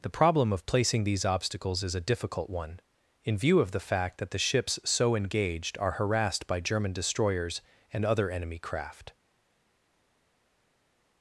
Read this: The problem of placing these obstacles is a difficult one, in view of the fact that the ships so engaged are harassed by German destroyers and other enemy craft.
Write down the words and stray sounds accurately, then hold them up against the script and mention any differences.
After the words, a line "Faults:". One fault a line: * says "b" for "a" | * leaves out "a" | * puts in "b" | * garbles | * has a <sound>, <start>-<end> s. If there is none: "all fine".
The problem of placing these obstacles is a difficult one, in view of the fact that the ships so engaged are harassed by German destroyers and other enemy craft.
Faults:
all fine